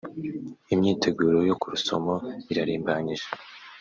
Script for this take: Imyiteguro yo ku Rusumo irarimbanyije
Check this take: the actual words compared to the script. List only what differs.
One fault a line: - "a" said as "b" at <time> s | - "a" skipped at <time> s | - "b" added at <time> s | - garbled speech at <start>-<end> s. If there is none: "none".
none